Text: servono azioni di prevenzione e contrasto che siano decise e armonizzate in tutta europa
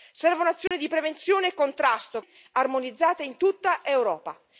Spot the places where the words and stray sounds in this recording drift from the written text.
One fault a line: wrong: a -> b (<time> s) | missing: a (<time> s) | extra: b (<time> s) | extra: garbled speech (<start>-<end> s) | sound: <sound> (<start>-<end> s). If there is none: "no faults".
sound: dropout (0.7-0.7 s)
missing: che siano decise (2.2 s)